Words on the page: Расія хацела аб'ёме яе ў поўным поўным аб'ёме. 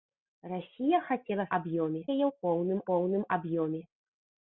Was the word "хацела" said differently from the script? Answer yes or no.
no